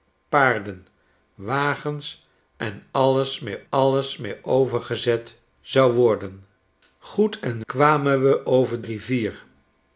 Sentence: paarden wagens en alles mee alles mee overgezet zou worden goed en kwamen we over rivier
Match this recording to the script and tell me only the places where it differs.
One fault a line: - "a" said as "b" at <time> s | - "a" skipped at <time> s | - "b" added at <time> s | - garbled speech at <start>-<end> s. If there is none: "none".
none